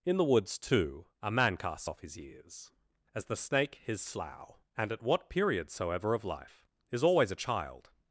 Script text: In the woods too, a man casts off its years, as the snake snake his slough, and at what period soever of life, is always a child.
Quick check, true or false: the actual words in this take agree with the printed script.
false